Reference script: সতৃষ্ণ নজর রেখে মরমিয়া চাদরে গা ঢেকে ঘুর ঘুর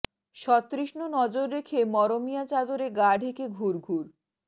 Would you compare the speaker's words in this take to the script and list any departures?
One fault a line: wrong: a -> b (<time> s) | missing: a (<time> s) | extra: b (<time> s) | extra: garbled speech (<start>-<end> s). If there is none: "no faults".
no faults